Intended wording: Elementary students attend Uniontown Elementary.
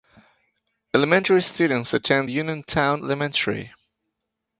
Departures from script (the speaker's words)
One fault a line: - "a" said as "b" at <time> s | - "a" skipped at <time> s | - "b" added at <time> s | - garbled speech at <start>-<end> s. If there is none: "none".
none